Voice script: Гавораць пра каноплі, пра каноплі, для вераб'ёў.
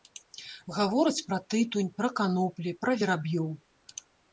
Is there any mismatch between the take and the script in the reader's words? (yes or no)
yes